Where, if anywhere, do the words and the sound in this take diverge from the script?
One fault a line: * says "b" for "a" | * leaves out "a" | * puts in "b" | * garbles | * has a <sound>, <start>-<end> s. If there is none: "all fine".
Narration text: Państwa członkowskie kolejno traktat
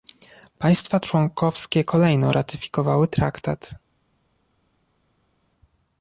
* puts in "ratyfikowały"